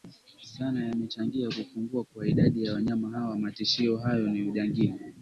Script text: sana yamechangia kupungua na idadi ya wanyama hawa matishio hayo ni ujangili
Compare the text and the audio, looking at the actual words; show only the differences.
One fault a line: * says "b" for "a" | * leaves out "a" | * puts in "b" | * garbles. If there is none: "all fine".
* says "kwa" for "na"